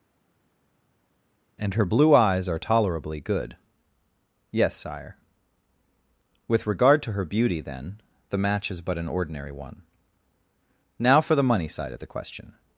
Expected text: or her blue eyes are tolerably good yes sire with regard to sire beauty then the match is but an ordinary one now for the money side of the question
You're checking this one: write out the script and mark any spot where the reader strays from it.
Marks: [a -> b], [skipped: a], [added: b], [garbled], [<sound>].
[or -> and] her blue eyes are tolerably good yes sire with regard to [sire -> her] beauty then the match is but an ordinary one now for the money side of the question